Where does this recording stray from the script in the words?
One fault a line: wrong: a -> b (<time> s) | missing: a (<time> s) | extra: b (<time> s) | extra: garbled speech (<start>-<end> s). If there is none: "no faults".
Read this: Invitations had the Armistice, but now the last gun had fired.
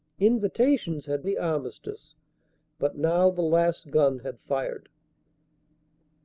no faults